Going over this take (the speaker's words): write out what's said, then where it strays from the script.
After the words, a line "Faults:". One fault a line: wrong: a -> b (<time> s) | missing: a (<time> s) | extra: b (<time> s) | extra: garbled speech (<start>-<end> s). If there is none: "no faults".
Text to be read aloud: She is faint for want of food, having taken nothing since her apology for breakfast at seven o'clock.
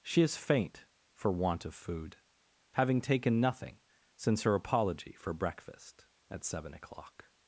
She is faint for want of food, having taken nothing since her apology for breakfast at seven o'clock.
Faults:
no faults